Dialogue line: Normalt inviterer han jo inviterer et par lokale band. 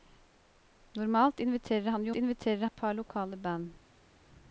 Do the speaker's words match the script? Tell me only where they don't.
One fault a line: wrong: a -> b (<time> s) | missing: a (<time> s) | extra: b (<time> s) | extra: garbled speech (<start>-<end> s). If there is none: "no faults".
no faults